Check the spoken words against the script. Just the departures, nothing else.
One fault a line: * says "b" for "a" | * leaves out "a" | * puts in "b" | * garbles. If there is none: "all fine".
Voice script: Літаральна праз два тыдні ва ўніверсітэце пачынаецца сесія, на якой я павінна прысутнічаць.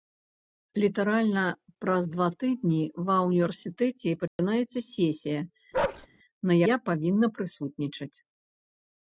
* leaves out "якой"